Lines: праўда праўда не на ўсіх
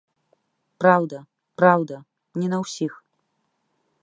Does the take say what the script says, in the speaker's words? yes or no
yes